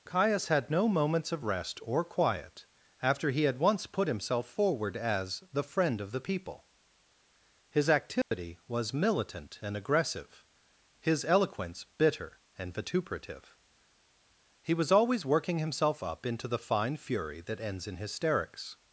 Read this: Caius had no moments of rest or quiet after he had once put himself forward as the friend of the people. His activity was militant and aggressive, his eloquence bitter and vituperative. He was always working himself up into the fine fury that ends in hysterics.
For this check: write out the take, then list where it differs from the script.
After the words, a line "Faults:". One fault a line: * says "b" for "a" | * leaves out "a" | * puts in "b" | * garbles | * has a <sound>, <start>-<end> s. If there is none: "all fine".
Caius had no moments of rest or quiet after he had once put himself forward as the friend of the people. His activity was militant and aggressive, his eloquence bitter and vituperative. He was always working himself up into the fine fury that ends in hysterics.
Faults:
* has a dropout, 8.2-8.3 s